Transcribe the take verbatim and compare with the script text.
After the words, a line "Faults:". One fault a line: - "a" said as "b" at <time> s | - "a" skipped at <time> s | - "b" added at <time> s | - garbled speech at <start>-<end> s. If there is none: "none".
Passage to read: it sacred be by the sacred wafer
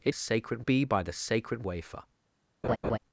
it sacred be by the sacred wafer
Faults:
none